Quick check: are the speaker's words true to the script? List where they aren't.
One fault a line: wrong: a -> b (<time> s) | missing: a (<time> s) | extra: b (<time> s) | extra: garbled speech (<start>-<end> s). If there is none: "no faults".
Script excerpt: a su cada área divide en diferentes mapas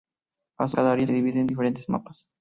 no faults